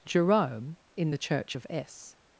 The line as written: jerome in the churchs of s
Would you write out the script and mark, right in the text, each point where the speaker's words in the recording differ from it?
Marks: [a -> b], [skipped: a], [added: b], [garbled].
jerome in the [churchs -> church] of s